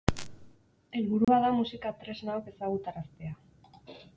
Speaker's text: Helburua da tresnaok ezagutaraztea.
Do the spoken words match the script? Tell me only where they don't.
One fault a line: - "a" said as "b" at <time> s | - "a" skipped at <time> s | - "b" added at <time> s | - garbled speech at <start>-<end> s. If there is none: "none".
- "musika" added at 1.6 s